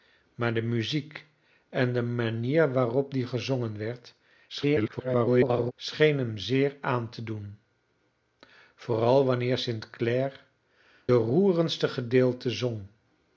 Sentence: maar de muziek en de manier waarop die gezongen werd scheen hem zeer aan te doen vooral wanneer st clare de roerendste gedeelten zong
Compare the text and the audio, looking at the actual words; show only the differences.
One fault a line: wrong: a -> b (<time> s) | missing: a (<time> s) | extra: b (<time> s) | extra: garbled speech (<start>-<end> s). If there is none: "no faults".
extra: garbled speech (4.5-5.7 s)
missing: de (10.4 s)